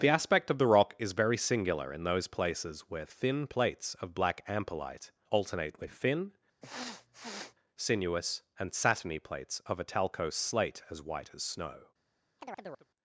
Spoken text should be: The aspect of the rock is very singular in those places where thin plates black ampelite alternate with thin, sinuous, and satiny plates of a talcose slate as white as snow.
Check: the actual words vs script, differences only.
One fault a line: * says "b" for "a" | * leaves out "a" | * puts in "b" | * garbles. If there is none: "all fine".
* puts in "of"